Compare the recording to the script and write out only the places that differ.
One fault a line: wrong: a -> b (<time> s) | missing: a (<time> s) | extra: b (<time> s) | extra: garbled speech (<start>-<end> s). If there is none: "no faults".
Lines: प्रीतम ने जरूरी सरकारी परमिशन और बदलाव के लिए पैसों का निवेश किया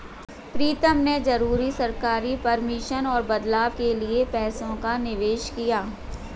no faults